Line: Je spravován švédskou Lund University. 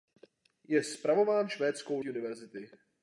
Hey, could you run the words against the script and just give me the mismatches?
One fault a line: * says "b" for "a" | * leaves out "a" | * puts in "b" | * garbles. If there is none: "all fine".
* leaves out "Lund"